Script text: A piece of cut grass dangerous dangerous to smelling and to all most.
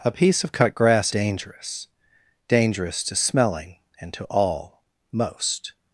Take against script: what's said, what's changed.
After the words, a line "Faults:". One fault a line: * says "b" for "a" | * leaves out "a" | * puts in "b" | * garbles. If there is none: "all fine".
A piece of cut grass dangerous dangerous to smelling and to all most.
Faults:
all fine